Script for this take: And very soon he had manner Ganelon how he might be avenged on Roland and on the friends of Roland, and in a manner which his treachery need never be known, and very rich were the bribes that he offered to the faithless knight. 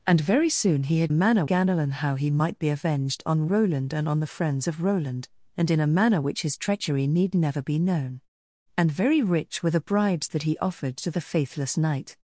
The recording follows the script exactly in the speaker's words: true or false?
true